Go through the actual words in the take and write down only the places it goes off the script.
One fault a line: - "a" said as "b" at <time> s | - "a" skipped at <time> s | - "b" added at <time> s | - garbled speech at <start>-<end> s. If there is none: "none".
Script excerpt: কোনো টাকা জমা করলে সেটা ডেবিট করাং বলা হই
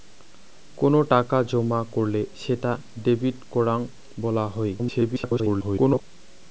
- garbled speech at 4.8-6.0 s